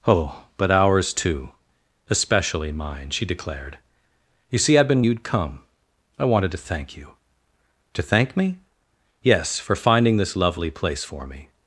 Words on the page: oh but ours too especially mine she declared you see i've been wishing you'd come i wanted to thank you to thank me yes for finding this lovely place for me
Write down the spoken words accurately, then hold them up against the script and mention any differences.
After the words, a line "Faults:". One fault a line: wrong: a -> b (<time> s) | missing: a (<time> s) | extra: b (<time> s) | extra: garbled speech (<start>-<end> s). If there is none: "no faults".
oh but ours too especially mine she declared you see i've been you'd come i wanted to thank you to thank me yes for finding this lovely place for me
Faults:
missing: wishing (5.0 s)